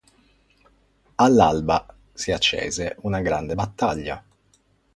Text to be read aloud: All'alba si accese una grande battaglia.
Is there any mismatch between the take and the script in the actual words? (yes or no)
no